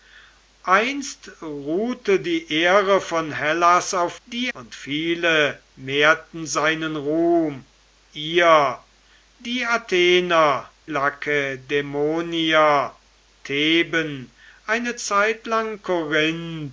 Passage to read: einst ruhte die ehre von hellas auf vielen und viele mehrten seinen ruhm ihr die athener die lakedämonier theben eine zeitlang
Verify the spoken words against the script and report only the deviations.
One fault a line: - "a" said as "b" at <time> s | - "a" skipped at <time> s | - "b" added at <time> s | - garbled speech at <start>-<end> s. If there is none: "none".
- "vielen" said as "die" at 4.3 s
- "die" skipped at 10.7 s